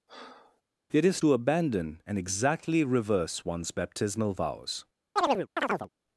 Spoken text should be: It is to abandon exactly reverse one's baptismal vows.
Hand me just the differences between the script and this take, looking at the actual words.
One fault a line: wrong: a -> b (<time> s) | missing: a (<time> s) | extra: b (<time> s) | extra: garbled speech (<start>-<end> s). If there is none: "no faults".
extra: and (2.1 s)